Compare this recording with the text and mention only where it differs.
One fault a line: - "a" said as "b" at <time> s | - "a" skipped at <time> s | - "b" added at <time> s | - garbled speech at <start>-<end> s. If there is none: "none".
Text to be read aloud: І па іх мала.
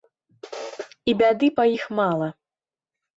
- "бяды" added at 1.2 s